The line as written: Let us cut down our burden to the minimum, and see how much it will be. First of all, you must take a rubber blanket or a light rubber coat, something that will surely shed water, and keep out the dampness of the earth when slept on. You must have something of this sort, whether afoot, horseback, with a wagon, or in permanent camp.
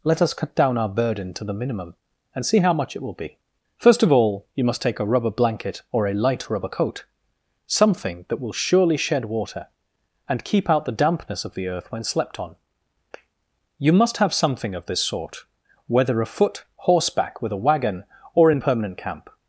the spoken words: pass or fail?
pass